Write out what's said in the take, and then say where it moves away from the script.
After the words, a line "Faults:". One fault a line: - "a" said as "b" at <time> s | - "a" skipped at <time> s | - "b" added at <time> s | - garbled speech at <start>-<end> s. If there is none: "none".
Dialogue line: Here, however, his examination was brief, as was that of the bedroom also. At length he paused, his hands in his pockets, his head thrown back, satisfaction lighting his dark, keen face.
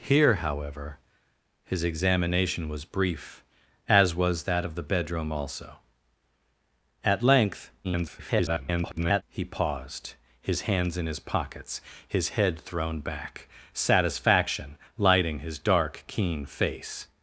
Here, however, his examination was brief, as was that of the bedroom also. At length [garbled] he paused, his hands in his pockets, his head thrown back, satisfaction lighting his dark, keen face.
Faults:
- garbled speech at 7.8-9.2 s